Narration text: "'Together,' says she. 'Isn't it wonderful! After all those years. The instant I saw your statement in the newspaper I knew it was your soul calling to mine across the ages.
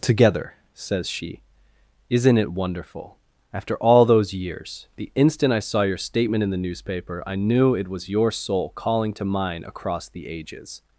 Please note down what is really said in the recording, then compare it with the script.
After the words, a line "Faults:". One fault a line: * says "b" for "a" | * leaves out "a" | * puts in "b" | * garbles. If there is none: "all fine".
"'Together,' says she. 'Isn't it wonderful! After all those years. The instant I saw your statement in the newspaper I knew it was your soul calling to mine across the ages.
Faults:
all fine